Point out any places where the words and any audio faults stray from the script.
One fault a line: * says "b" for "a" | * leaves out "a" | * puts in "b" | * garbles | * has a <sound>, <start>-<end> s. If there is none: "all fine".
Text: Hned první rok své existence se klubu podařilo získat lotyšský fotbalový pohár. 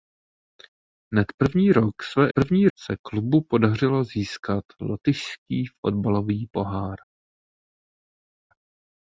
* says "první" for "existence"